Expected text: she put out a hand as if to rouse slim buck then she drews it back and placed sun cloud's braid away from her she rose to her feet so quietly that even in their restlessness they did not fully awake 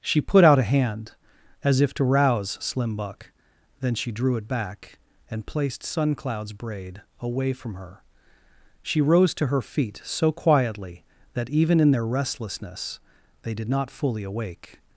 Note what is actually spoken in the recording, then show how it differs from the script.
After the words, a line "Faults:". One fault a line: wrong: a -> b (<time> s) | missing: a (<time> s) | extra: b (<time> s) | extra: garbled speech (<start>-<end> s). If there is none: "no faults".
she put out a hand as if to rouse slim buck then she drew it back and placed sun cloud's braid away from her she rose to her feet so quietly that even in their restlessness they did not fully awake
Faults:
wrong: drews -> drew (4.1 s)